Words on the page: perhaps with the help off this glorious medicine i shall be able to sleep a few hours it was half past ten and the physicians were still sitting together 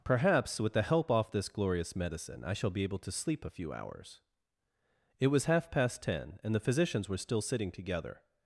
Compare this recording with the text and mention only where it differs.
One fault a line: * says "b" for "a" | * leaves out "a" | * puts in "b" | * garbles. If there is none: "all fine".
all fine